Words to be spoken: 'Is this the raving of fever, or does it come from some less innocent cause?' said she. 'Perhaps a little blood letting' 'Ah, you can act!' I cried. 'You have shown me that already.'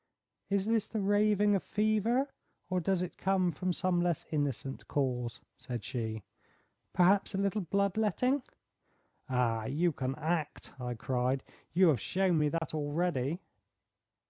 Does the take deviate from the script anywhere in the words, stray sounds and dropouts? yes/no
yes